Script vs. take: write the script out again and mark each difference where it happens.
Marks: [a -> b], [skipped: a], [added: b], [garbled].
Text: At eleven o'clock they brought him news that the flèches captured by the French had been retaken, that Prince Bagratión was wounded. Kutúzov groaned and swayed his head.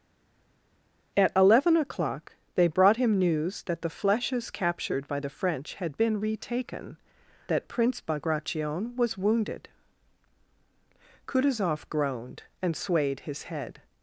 At eleven o'clock they brought him news that the flèches captured by the French had been retaken, that Prince Bagratión was wounded. Kutúzov groaned and swayed his head.